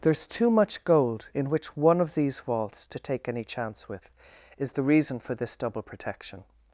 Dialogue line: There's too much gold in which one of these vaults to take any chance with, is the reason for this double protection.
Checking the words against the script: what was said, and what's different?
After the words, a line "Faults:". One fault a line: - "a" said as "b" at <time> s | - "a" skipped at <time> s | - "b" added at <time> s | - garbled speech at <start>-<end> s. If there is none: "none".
There's too much gold in which one of these vaults to take any chance with, is the reason for this double protection.
Faults:
none